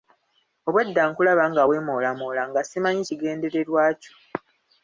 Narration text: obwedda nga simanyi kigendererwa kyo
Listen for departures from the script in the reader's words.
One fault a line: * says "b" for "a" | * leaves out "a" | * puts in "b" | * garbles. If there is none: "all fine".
* puts in "nkulaba nga weemoolamoola"